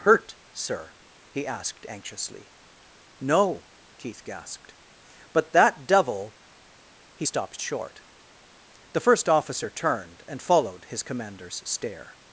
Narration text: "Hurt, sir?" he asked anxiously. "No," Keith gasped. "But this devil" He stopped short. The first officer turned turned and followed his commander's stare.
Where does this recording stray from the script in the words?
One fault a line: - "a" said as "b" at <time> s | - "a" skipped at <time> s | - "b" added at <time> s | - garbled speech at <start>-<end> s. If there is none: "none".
- "this" said as "that" at 5.5 s
- "turned" skipped at 10.2 s